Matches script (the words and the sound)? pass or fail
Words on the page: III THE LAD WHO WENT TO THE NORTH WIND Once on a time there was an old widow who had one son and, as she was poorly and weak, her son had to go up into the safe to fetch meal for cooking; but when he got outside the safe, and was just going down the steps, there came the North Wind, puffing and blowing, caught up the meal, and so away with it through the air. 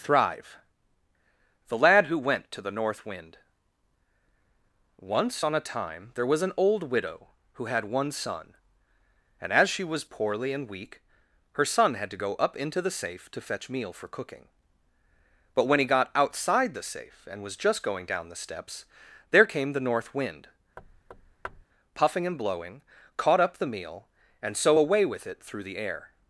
fail